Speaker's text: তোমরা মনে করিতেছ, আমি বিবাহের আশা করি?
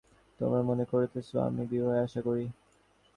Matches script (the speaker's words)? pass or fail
pass